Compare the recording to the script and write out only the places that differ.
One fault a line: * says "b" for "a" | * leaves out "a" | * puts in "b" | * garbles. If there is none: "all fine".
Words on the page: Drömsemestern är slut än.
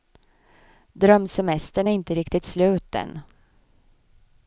* puts in "inte riktigt"